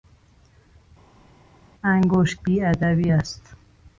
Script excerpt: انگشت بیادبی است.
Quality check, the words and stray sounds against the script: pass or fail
pass